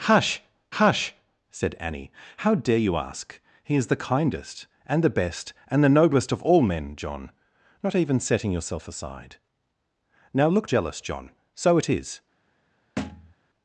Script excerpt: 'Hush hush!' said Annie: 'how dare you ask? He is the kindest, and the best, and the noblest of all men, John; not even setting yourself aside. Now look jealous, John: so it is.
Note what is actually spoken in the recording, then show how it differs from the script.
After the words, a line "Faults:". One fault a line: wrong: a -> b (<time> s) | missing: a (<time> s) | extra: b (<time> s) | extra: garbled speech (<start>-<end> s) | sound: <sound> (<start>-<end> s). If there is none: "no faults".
'Hush hush!' said Annie: 'how dare you ask? He is the kindest, and the best, and the noblest of all men, John; not even setting yourself aside. Now look jealous, John: so it is.
Faults:
sound: thud (13.0-13.3 s)